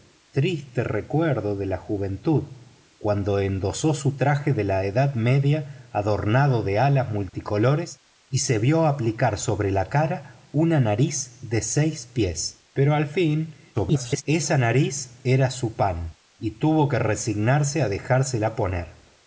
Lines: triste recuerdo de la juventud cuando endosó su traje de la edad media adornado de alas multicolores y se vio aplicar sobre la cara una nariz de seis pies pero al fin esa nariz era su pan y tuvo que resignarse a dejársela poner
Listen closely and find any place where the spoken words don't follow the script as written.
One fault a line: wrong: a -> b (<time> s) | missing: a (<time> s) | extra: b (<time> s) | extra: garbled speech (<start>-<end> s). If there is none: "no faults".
extra: garbled speech (13.7-14.2 s)